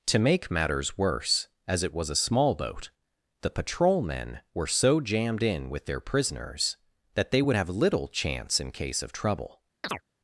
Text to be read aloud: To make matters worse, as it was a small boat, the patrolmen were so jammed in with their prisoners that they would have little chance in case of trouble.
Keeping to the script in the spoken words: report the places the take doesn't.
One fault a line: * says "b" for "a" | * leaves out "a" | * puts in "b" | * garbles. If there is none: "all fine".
all fine